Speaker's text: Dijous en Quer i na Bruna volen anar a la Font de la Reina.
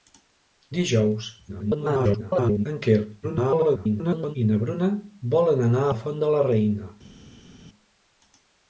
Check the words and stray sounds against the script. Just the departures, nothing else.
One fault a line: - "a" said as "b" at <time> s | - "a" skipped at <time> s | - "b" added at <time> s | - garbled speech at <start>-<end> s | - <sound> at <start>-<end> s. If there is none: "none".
- garbled speech at 1.5-2.7 s
- garbled speech at 3.2-4.4 s
- "a" skipped at 5.9 s